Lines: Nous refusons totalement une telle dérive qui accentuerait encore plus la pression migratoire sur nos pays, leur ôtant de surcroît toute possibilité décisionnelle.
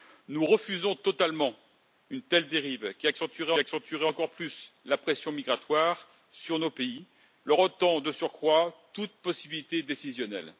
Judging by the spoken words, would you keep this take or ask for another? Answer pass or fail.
fail